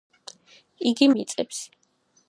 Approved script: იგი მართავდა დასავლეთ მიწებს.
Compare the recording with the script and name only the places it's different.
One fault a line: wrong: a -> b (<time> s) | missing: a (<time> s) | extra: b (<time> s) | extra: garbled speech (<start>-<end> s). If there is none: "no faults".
missing: მართავდა დასავლეთ (1.1 s)